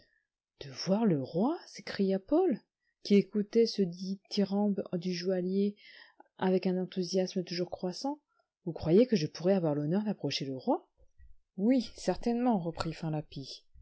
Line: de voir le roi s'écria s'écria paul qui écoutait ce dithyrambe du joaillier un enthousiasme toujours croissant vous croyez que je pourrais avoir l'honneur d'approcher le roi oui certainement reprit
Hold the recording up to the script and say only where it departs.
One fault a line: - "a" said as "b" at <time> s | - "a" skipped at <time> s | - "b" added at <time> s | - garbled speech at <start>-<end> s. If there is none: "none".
- "s'écria" skipped at 2.2 s
- "avec" added at 6.4 s